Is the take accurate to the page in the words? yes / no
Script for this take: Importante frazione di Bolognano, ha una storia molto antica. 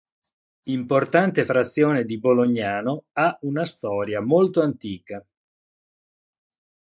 yes